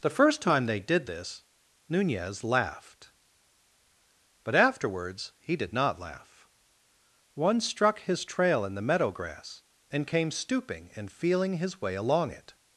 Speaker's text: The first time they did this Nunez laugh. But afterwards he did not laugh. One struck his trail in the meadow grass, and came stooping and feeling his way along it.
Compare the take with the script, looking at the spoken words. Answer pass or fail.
fail